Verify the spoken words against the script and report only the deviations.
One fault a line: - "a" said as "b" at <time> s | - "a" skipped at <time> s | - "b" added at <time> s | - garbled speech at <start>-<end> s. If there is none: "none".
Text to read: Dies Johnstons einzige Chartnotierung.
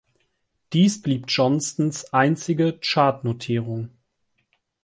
- "blieb" added at 1.0 s